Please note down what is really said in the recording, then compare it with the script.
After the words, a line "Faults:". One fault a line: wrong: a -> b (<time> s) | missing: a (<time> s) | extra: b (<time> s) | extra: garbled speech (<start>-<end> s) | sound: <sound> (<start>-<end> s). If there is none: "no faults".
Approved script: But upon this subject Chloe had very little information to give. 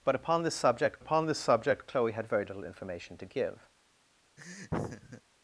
But upon this subject upon this subject Chloe had very little information to give.
Faults:
extra: upon this subject (1.0 s)
sound: laugh (4.4-5.2 s)